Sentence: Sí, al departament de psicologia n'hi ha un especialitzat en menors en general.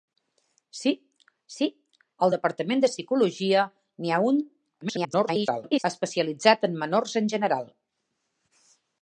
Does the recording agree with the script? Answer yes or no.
no